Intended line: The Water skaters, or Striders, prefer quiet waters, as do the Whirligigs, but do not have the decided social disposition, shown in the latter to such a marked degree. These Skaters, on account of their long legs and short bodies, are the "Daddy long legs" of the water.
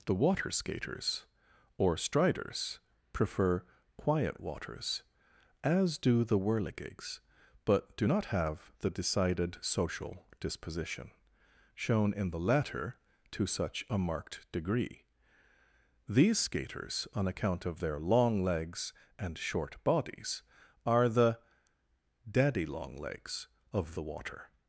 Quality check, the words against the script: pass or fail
pass